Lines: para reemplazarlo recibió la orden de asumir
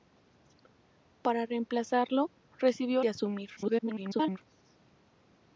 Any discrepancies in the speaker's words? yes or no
yes